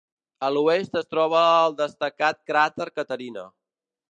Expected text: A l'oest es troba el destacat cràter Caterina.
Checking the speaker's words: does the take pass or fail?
pass